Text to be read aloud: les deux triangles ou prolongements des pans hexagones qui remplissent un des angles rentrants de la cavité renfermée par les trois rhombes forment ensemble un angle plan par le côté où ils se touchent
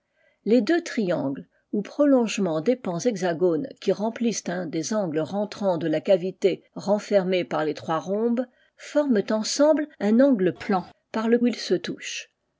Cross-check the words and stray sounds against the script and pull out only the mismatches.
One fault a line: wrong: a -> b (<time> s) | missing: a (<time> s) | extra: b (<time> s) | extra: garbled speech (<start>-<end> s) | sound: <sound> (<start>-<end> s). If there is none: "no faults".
missing: côté (11.4 s)